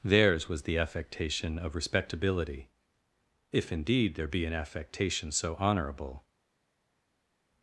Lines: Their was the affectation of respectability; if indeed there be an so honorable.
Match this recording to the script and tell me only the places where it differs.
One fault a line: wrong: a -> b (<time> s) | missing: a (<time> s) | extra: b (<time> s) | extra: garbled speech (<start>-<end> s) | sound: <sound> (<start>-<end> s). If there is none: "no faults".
wrong: Their -> Theirs (0.0 s)
extra: affectation (4.5 s)